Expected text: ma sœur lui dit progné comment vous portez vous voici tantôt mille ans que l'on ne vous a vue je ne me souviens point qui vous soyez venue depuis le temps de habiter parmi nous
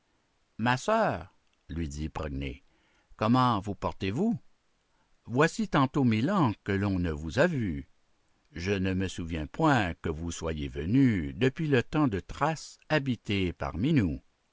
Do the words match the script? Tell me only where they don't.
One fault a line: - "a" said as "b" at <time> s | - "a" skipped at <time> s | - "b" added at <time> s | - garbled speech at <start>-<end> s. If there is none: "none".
- "qui" said as "que" at 9.9 s
- "thrace" added at 12.2 s